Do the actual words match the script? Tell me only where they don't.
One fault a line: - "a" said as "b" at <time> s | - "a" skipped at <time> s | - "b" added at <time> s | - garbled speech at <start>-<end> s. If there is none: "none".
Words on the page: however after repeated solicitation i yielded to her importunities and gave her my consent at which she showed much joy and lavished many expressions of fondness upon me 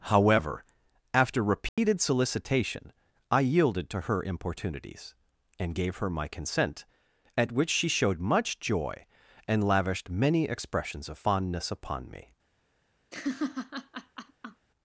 none